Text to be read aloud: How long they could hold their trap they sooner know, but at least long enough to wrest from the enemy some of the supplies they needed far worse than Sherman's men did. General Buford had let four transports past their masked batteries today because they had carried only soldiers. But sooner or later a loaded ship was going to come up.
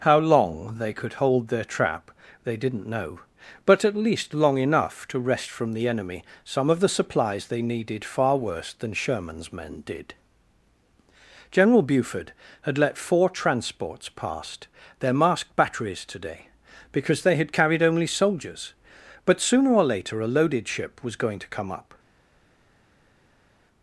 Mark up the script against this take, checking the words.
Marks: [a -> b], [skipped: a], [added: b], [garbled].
How long they could hold their trap they [sooner -> didn't] know, but at least long enough to wrest from the enemy some of the supplies they needed far worse than Sherman's men did. General Buford had let four transports past their masked batteries today because they had carried only soldiers. But sooner or later a loaded ship was going to come up.